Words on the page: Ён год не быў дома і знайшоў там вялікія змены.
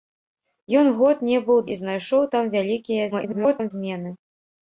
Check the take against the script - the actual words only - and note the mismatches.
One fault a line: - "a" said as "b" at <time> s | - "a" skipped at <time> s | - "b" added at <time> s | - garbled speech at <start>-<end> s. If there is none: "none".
- "дома" skipped at 1.6 s
- garbled speech at 3.1-3.7 s